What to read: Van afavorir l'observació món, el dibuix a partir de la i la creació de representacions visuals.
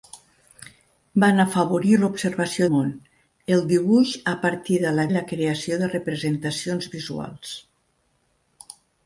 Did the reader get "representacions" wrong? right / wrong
right